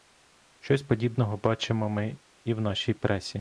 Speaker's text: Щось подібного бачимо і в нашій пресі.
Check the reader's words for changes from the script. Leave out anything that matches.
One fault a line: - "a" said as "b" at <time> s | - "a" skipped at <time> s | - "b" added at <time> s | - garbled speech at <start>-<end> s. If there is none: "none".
- "ми" added at 1.9 s